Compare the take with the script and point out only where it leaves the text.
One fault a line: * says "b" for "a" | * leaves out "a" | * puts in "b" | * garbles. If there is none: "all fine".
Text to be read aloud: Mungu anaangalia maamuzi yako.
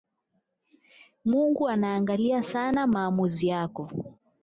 * puts in "sana"